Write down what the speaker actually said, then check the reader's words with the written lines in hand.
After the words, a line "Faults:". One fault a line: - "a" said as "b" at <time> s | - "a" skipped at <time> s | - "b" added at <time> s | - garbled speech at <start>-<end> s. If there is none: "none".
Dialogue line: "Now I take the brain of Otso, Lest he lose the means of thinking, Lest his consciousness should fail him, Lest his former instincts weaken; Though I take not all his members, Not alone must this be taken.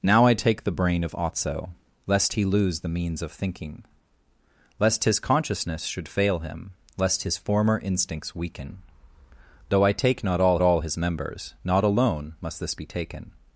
"Now I take the brain of Otso, Lest he lose the means of thinking, Lest his consciousness should fail him, Lest his former instincts weaken; Though I take not all all his members, Not alone must this be taken.
Faults:
- "all" added at 10.6 s